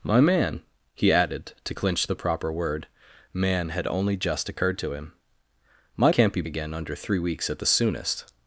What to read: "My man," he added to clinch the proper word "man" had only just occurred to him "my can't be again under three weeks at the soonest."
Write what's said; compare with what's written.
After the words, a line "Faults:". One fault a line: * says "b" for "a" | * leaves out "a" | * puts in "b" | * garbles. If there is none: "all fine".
"My man," he added to clinch the proper word "man" had only just occurred to him "my can't be again under three weeks at the soonest."
Faults:
all fine